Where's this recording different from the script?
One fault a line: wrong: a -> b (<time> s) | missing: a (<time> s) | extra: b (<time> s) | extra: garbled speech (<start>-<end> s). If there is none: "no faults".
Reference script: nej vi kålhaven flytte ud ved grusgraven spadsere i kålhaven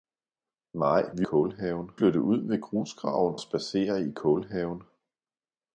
no faults